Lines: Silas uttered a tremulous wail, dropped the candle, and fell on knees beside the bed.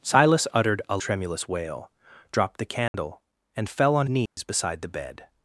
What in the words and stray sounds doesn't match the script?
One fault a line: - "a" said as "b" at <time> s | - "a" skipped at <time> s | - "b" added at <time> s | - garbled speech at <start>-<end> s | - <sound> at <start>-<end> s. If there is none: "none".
- dropout at 2.9-2.9 s
- dropout at 4.3-4.4 s